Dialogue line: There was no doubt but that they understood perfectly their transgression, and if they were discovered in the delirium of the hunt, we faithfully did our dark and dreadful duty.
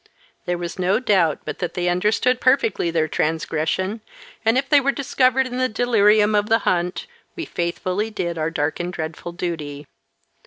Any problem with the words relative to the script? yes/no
no